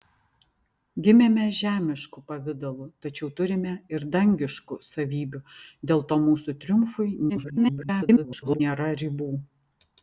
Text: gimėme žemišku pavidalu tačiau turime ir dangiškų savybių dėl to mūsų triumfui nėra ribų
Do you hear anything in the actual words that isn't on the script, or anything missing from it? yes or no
yes